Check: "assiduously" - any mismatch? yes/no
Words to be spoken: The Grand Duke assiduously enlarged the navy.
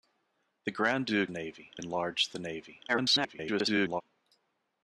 yes